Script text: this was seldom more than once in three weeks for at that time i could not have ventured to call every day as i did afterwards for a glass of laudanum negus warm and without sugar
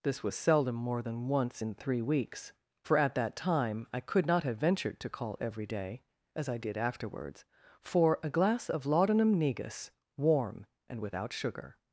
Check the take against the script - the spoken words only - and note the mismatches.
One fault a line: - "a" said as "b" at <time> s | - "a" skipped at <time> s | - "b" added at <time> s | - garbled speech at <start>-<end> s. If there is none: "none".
none